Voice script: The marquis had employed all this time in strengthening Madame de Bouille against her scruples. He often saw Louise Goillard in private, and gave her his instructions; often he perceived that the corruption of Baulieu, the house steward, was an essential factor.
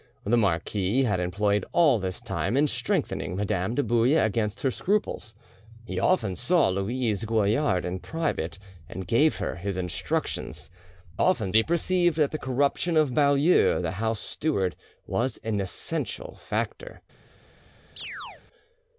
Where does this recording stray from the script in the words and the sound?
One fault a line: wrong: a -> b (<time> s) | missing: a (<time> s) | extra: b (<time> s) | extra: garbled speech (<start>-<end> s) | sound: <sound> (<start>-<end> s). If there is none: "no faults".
sound: chirp (18.0-18.4 s)